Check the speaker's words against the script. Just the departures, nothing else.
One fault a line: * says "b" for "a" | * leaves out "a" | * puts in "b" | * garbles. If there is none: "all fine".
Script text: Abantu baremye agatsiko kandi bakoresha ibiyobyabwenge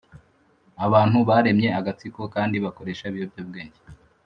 all fine